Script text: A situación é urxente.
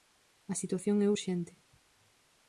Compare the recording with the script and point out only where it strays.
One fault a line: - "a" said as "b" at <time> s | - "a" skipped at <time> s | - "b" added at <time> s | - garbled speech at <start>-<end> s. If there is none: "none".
none